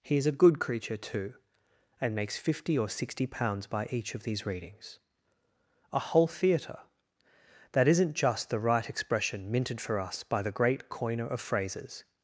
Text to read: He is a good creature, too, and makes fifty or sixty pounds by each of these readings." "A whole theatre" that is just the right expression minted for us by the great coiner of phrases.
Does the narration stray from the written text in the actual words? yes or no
yes